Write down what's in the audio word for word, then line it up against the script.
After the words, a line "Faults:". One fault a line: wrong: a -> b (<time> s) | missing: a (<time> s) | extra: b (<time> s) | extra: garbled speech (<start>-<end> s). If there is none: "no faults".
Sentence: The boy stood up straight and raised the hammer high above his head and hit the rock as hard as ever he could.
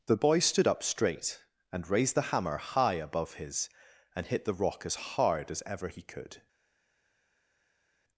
The boy stood up straight and raised the hammer high above his and hit the rock as hard as ever he could.
Faults:
missing: head (3.7 s)